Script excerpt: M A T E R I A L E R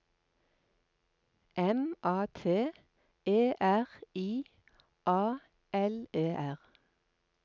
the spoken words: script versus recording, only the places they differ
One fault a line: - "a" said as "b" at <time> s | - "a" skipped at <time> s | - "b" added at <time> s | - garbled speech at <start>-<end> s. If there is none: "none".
none